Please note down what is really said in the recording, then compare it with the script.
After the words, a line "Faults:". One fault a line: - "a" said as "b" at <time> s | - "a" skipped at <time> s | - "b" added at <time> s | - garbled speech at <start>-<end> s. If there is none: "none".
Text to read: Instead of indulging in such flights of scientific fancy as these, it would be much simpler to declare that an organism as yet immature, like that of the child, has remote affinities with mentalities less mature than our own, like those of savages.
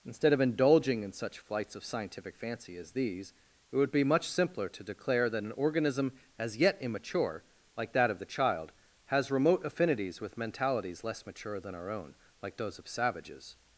Instead of indulging in such flights of scientific fancy as these, it would be much simpler to declare that an organism as yet immature, like that of the child, has remote affinities with mentalities less mature than our own, like those of savages.
Faults:
none